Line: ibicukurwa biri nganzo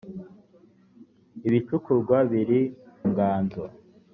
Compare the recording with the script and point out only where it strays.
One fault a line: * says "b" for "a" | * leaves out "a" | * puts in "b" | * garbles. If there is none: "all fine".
all fine